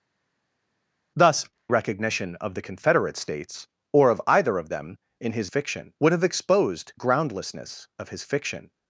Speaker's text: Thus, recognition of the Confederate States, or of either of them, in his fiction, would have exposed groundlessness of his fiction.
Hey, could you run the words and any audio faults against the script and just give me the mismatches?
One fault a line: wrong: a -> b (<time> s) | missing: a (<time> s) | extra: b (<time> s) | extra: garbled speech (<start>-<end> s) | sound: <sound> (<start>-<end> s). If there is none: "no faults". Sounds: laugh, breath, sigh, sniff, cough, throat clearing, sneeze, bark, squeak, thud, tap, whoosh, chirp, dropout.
no faults